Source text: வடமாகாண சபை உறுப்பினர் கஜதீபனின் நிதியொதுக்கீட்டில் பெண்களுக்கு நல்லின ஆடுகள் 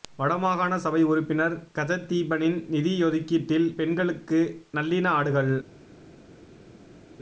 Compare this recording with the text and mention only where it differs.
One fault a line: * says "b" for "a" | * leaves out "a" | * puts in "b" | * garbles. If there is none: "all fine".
all fine